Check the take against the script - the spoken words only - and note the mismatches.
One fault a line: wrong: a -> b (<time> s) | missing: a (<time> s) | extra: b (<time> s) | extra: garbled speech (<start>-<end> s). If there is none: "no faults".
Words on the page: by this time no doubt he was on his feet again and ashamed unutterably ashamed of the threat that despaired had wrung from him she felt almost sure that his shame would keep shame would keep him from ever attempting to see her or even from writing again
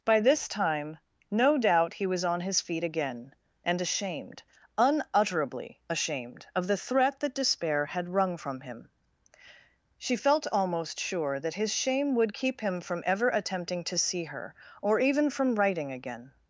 wrong: despaired -> despair (7.3 s)
missing: shame would keep (12.6 s)